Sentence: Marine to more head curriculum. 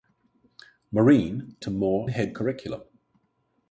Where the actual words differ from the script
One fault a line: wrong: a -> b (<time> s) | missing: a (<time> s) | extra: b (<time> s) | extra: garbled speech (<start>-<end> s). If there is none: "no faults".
no faults